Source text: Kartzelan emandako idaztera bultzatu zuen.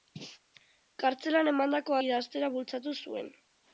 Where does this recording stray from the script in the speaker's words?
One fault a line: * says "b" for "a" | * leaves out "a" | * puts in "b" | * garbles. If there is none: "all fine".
all fine